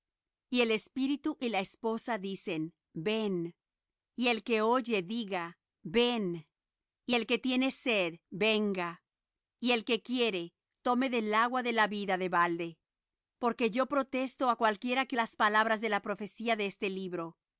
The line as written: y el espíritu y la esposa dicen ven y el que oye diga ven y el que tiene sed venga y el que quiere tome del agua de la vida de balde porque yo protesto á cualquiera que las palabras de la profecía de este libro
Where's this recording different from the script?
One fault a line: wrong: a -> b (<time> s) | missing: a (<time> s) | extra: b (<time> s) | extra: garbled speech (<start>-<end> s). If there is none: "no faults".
no faults